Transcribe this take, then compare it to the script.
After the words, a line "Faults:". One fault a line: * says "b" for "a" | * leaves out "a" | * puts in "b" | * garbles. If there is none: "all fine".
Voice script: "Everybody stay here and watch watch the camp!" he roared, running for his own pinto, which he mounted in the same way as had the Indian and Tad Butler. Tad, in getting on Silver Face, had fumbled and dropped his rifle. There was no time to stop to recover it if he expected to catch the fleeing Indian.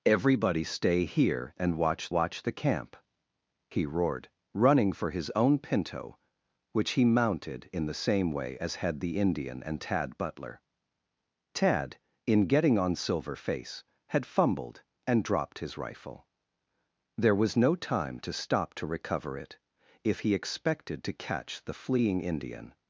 "Everybody stay here and watch watch the camp!" he roared, running for his own pinto, which he mounted in the same way as had the Indian and Tad Butler. Tad, in getting on Silver Face, had fumbled and dropped his rifle. There was no time to stop to recover it if he expected to catch the fleeing Indian.
Faults:
all fine